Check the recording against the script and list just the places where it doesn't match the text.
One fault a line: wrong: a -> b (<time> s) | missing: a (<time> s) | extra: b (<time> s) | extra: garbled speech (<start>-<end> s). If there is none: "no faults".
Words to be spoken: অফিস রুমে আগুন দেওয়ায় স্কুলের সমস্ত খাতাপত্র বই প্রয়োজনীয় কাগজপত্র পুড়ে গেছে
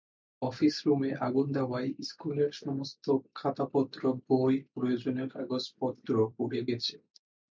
no faults